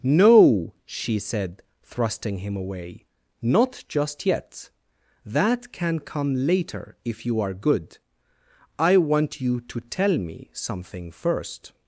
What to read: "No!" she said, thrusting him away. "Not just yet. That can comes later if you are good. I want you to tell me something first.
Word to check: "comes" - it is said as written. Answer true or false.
false